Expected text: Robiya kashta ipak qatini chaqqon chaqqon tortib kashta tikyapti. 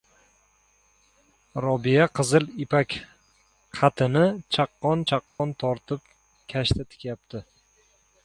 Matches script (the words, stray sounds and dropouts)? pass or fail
fail